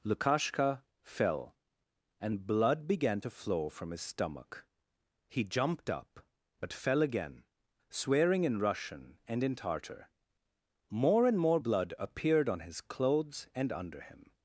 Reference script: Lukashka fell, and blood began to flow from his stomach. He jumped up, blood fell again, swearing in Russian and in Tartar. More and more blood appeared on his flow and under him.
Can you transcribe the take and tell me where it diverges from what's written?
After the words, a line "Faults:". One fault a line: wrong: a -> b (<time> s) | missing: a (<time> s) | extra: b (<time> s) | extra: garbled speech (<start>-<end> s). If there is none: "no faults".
Lukashka fell, and blood began to flow from his stomach. He jumped up, but fell again, swearing in Russian and in Tartar. More and more blood appeared on his clothes and under him.
Faults:
wrong: blood -> but (6.6 s)
wrong: flow -> clothes (12.8 s)